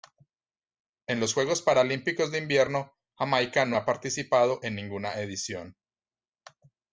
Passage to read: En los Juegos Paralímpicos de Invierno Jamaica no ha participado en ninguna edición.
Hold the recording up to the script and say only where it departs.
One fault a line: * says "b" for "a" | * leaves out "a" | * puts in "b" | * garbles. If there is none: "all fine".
all fine